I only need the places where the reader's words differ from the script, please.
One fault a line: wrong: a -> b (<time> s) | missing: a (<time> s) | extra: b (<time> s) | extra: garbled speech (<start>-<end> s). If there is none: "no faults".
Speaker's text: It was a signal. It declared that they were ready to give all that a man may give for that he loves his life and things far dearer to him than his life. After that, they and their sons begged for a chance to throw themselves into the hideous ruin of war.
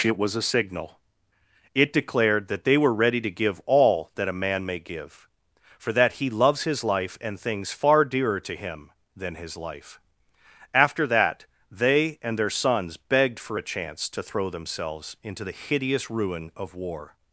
no faults